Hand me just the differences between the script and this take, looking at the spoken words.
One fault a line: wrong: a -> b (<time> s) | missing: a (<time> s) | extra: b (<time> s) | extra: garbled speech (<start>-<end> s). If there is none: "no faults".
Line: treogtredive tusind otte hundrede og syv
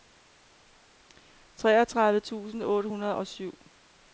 no faults